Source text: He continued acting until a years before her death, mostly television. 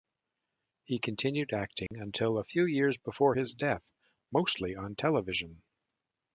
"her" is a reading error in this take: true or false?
true